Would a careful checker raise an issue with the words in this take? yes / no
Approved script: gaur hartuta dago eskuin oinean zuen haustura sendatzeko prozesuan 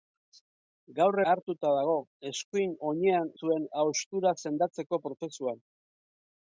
no